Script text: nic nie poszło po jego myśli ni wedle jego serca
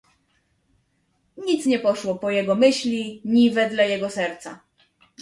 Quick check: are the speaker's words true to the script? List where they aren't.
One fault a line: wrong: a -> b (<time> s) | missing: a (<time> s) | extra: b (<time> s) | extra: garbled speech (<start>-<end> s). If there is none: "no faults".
no faults